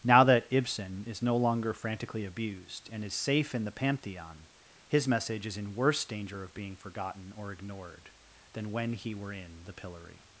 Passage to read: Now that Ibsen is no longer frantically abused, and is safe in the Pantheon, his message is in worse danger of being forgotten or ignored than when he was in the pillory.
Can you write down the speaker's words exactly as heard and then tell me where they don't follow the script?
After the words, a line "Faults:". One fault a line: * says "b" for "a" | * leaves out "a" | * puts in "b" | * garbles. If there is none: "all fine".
Now that Ibsen is no longer frantically abused, and is safe in the Pantheon, his message is in worse danger of being forgotten or ignored than when he were in the pillory.
Faults:
* says "were" for "was"